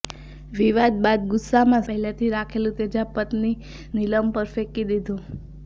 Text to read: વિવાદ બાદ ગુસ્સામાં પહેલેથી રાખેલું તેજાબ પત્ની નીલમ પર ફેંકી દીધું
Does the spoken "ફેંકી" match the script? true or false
true